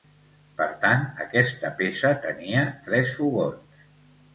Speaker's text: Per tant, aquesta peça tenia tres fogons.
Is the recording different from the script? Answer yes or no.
no